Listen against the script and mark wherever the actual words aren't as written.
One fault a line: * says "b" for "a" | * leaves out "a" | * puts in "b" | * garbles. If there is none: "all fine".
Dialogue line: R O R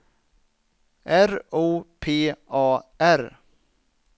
* puts in "P A"